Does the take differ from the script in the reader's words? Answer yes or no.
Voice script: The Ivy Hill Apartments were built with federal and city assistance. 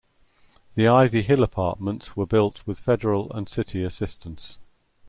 no